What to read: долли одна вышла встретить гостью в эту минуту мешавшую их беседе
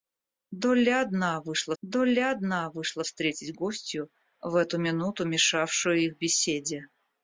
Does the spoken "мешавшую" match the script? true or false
true